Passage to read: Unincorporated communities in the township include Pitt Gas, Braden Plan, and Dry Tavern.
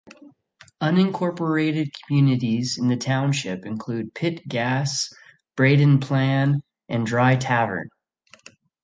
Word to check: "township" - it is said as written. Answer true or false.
true